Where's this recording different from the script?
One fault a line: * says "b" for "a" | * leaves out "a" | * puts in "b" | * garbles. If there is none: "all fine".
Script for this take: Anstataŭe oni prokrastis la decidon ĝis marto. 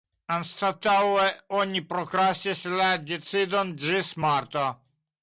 all fine